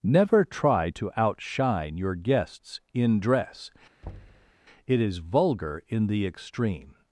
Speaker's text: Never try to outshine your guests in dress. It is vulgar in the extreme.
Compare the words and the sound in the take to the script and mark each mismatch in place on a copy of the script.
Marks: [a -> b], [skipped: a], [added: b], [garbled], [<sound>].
Never try to outshine your guests in dress. [thud] It is vulgar in the extreme.